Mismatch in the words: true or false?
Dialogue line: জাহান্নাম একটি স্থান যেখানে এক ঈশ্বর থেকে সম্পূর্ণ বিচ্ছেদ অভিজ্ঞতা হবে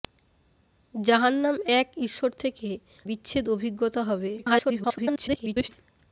true